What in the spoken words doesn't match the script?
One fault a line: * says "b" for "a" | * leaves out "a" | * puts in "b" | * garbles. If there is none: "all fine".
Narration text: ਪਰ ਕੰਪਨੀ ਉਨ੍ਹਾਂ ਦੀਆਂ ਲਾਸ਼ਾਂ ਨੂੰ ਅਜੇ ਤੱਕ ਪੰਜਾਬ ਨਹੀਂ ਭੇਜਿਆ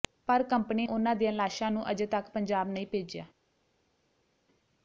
all fine